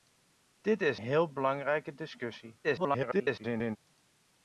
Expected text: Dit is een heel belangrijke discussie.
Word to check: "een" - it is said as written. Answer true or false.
false